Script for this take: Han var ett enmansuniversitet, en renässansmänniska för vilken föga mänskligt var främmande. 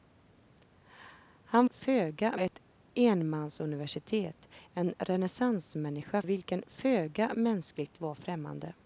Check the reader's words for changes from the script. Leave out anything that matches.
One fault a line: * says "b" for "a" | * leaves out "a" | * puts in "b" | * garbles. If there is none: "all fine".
* says "föga" for "var"
* leaves out "för"